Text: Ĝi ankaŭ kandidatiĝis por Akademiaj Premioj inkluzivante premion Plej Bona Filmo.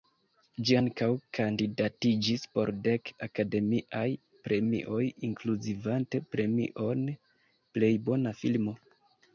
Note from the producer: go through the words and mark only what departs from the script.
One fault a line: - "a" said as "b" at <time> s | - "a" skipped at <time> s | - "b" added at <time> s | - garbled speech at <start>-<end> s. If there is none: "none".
- "dek" added at 2.9 s